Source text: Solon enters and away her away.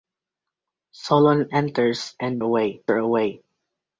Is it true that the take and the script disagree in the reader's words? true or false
false